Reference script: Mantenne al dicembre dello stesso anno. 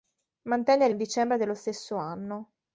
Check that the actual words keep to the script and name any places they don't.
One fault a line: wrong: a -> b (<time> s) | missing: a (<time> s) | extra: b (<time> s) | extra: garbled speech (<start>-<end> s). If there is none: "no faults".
no faults